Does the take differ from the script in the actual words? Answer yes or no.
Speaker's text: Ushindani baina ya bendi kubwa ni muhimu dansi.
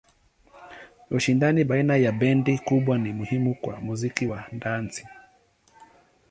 yes